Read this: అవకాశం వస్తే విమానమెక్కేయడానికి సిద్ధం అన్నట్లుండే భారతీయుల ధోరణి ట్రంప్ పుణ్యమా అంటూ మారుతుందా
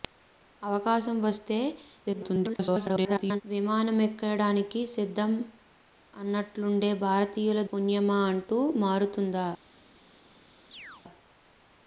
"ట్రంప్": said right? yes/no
no